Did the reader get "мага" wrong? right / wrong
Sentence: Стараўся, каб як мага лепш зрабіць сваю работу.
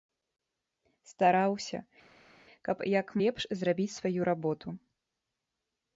wrong